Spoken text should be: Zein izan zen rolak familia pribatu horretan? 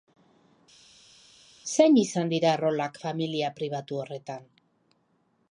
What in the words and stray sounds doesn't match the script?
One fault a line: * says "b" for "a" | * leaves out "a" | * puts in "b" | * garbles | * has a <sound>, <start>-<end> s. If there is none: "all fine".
* says "dira" for "zen"